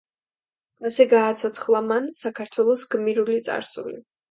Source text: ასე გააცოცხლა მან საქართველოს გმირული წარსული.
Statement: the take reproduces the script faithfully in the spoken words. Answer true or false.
true